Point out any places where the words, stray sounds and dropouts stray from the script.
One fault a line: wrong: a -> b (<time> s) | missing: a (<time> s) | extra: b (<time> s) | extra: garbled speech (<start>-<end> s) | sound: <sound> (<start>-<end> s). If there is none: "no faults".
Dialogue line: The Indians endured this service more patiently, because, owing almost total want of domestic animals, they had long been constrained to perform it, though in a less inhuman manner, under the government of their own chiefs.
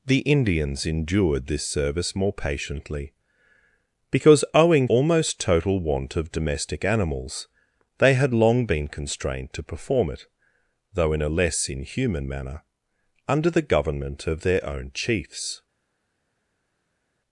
no faults